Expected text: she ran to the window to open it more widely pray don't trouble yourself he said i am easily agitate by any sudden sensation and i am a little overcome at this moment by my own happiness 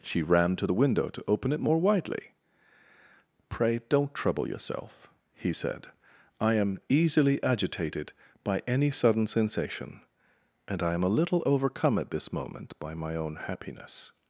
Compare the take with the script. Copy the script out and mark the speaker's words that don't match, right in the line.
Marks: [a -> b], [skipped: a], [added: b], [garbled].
she ran to the window to open it more widely pray don't trouble yourself he said i am easily [agitate -> agitated] by any sudden sensation and i am a little overcome at this moment by my own happiness